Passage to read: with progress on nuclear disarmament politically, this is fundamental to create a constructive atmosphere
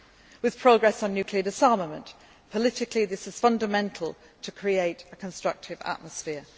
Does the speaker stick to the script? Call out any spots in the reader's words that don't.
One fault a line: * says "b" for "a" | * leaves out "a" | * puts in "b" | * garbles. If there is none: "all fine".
all fine